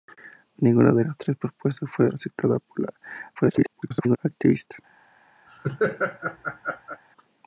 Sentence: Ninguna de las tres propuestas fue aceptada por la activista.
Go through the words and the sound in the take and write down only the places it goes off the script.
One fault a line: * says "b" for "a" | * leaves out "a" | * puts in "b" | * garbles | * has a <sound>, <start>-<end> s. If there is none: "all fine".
* garbles
* has a laugh, 5.5-7.0 s